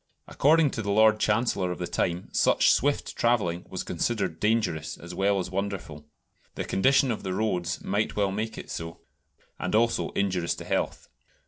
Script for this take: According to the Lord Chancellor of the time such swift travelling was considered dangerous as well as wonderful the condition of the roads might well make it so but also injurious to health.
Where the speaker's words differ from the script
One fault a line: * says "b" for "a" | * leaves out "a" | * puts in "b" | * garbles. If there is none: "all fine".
* says "and" for "but"